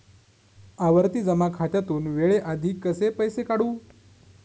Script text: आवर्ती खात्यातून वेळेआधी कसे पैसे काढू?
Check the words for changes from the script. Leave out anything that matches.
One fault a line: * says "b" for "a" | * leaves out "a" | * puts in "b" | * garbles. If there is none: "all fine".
* puts in "जमा"